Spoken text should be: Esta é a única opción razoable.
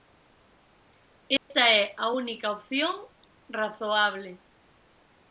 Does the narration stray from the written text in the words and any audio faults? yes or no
yes